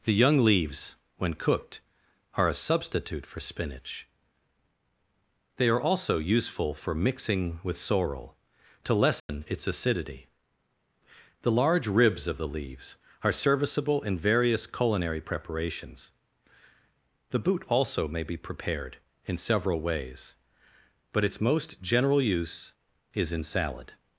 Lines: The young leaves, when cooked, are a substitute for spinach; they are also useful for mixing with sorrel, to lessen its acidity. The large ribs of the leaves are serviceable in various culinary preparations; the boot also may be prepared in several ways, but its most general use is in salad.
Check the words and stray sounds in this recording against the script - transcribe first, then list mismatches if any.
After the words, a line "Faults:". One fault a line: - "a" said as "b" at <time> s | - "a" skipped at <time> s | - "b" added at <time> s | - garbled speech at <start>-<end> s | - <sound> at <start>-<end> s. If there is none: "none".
The young leaves, when cooked, are a substitute for spinach; they are also useful for mixing with sorrel, to lessen its acidity. The large ribs of the leaves are serviceable in various culinary preparations; the boot also may be prepared in several ways, but its most general use is in salad.
Faults:
- dropout at 9.2-9.3 s